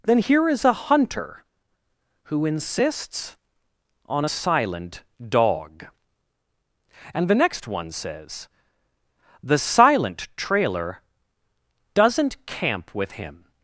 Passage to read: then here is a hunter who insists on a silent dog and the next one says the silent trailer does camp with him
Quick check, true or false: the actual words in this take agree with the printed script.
false